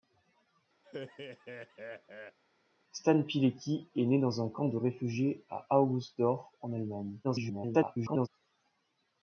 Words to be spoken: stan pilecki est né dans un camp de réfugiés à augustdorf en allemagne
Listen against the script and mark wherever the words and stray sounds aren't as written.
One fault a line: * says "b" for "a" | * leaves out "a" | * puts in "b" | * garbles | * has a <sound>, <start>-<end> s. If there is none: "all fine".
* has a laugh, 0.8-2.4 s
* garbles